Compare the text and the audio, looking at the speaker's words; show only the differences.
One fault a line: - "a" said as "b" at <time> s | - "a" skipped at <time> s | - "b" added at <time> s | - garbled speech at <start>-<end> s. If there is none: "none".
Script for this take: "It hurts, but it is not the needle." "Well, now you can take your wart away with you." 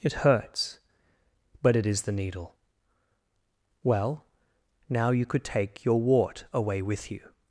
- "not" skipped at 2.0 s
- "can" said as "could" at 5.2 s